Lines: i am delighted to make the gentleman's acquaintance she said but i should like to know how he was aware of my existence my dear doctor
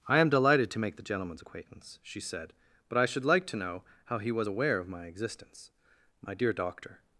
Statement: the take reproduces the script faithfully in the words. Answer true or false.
true